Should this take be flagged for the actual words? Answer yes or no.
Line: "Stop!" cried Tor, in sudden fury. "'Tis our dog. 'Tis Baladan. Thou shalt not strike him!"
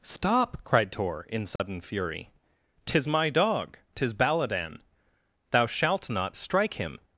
yes